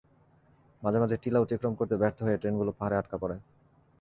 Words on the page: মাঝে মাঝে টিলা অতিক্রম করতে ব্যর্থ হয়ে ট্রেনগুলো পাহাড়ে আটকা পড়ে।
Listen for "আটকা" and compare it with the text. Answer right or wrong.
right